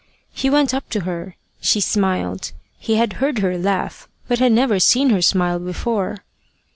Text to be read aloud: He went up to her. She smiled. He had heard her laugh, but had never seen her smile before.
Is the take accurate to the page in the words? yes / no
yes